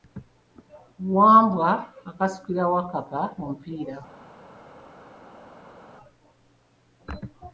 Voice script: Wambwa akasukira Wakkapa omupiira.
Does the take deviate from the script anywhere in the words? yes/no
no